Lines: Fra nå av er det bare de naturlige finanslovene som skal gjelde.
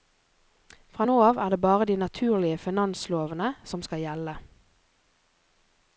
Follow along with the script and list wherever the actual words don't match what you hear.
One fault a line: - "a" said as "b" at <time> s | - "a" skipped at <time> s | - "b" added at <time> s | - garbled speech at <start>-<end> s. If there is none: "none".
none